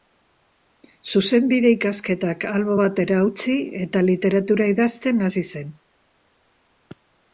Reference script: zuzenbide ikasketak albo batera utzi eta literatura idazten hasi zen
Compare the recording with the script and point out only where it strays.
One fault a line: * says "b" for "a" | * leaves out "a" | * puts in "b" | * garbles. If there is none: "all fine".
all fine